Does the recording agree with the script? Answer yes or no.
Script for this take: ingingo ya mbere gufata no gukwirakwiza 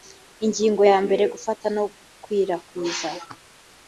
yes